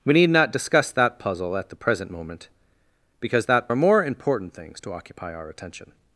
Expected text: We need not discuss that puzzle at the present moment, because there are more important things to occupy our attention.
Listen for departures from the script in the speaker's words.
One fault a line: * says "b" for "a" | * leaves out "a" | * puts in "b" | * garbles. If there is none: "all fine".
* says "that" for "there"